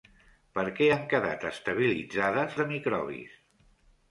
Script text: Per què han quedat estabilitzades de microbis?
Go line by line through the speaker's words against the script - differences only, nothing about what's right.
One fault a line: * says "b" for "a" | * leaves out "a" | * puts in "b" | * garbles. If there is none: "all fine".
all fine